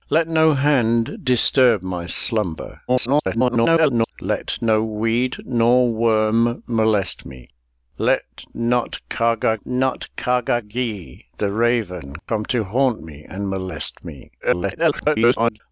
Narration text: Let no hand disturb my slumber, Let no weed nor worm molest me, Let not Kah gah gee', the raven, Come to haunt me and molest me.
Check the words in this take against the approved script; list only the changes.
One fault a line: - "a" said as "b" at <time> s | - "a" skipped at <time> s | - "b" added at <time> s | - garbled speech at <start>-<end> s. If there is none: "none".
- garbled speech at 2.9-4.1 s
- "not Kah gah" added at 9.6 s
- garbled speech at 14.4-15.6 s